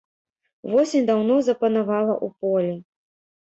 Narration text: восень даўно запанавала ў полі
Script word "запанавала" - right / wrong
right